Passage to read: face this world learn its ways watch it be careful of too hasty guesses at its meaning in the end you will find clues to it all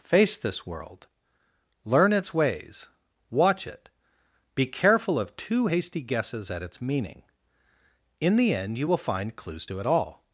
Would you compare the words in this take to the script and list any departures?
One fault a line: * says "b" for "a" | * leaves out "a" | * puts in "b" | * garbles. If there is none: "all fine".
all fine